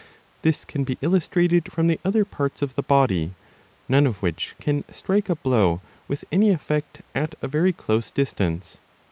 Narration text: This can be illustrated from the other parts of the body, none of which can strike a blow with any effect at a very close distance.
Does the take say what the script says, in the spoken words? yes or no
yes